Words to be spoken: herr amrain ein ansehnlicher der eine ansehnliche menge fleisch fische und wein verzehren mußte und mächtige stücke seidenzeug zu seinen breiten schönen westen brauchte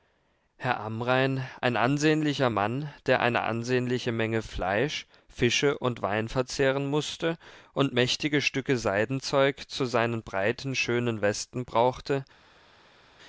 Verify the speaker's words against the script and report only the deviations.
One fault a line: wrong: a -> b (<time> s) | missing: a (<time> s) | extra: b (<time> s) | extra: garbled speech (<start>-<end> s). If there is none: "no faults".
extra: mann (2.5 s)